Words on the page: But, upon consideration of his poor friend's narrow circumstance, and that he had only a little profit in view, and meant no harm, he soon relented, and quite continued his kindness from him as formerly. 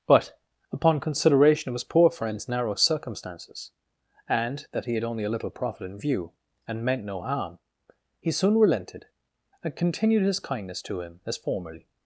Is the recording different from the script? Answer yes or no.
yes